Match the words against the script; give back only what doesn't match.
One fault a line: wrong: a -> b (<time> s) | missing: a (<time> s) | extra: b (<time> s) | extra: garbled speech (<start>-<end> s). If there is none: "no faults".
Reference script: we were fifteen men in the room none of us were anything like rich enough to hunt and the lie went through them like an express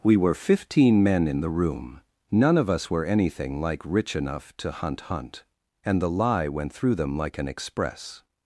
extra: hunt (5.0 s)